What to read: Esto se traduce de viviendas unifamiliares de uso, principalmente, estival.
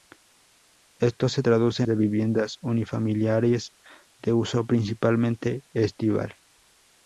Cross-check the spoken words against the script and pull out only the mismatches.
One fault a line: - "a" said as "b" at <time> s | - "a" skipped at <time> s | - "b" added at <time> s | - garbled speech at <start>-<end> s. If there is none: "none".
none